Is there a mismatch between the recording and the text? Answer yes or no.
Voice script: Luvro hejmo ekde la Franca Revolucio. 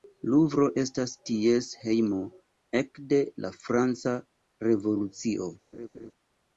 yes